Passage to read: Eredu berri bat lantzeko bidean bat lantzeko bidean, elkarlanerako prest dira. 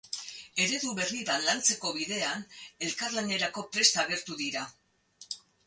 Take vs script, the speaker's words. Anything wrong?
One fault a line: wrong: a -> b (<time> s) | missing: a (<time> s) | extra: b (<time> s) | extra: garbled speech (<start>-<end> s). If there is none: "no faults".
missing: bat lantzeko bidean (2.5 s)
extra: agertu (4.1 s)